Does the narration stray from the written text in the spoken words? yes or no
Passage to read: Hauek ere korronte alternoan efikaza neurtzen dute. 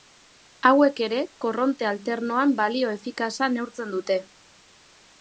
yes